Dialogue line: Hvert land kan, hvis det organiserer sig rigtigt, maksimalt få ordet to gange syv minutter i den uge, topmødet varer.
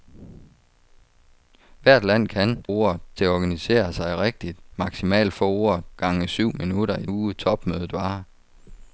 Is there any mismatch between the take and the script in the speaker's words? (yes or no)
yes